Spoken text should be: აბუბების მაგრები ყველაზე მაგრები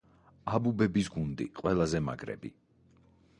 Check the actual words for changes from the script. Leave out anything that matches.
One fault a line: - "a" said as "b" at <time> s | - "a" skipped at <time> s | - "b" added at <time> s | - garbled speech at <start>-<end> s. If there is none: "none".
- "მაგრები" said as "გუნდი" at 1.2 s